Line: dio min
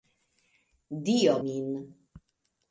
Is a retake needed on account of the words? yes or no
no